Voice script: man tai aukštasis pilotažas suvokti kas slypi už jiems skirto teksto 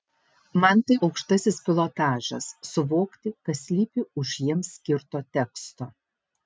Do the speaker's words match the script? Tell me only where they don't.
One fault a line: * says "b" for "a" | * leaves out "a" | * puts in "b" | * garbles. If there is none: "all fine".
all fine